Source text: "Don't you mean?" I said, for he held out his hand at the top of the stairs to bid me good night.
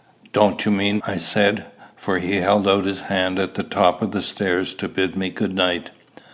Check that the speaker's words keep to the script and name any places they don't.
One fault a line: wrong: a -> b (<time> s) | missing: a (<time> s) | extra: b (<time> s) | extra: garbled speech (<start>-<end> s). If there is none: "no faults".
no faults